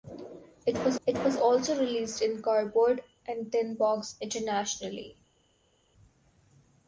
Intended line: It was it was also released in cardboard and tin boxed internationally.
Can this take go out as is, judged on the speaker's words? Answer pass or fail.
pass